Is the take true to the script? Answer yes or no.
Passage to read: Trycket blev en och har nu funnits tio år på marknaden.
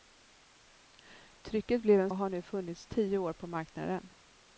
yes